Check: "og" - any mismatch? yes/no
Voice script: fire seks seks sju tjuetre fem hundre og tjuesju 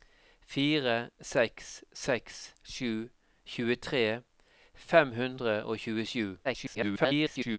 no